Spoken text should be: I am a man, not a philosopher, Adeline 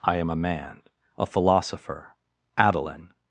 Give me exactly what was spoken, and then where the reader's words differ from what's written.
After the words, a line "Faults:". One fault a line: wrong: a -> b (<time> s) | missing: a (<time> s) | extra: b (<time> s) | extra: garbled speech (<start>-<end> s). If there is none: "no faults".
I am a man, a philosopher, Adeline
Faults:
missing: not (0.8 s)